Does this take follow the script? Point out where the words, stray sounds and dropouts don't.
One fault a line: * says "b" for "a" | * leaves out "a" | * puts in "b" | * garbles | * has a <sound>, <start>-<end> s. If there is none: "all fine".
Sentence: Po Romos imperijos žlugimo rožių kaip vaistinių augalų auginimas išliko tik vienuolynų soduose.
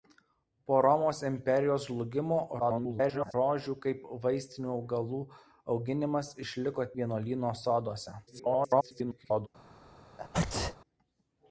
* garbles
* leaves out "tik"
* garbles
* has a sneeze, 10.2-10.8 s